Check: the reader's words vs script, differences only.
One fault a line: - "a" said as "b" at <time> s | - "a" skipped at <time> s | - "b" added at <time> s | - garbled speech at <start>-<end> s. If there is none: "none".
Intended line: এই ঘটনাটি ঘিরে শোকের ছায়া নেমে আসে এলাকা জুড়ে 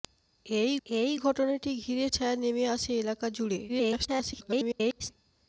- "এই" added at 0.9 s
- "শোকের" skipped at 2.1 s
- garbled speech at 3.7-5.1 s